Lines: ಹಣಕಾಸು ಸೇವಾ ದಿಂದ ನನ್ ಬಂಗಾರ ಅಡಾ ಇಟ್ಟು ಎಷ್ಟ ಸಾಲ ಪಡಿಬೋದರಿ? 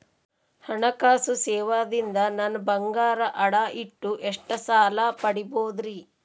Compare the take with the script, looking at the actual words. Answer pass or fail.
pass